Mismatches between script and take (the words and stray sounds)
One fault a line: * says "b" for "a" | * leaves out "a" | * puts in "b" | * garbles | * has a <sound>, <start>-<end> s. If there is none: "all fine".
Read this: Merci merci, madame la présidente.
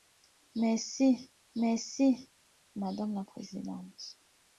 all fine